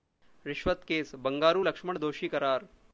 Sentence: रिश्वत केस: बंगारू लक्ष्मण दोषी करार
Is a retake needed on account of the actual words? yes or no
no